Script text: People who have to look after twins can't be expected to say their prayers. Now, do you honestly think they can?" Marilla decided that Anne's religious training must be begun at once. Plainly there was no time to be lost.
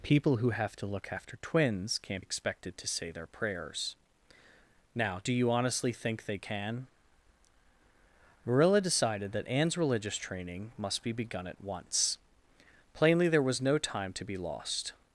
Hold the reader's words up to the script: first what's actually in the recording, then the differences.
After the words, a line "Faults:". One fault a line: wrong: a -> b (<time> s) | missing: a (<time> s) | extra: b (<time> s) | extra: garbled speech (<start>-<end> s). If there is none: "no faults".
People who have to look after twins can't expected to say their prayers. Now, do you honestly think they can?" Marilla decided that Anne's religious training must be begun at once. Plainly there was no time to be lost.
Faults:
missing: be (2.2 s)